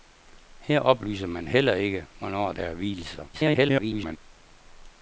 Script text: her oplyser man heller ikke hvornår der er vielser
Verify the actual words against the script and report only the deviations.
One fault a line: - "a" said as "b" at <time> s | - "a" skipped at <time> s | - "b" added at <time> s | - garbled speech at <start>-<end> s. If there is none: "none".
- garbled speech at 3.3-4.2 s